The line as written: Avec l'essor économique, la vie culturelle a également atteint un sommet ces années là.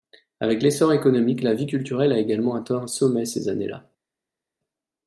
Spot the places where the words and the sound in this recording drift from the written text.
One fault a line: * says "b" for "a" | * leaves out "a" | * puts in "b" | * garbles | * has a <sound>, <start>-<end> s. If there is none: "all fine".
all fine